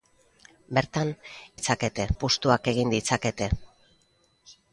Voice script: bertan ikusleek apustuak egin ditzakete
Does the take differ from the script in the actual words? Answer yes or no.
yes